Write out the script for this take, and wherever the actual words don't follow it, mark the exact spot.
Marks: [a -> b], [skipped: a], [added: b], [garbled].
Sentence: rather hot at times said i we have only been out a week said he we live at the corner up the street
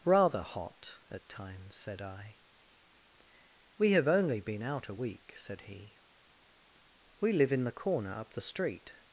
rather hot at times said i we have only been out a week said he we live [at -> in] the corner up the street